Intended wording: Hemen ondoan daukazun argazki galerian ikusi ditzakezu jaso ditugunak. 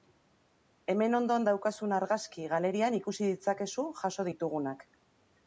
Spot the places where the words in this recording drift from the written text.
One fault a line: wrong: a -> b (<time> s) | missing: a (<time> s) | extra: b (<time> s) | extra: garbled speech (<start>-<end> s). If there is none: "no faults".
no faults